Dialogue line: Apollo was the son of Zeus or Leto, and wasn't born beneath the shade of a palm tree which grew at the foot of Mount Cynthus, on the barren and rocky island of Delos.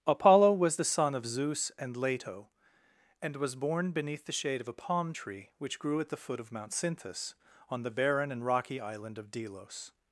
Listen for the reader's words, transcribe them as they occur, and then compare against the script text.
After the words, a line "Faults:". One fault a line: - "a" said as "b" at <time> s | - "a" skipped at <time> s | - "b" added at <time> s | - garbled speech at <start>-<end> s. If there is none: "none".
Apollo was the son of Zeus and Leto, and was born beneath the shade of a palm tree which grew at the foot of Mount Cynthus, on the barren and rocky island of Delos.
Faults:
- "or" said as "and" at 1.8 s
- "wasn't" said as "was" at 3.3 s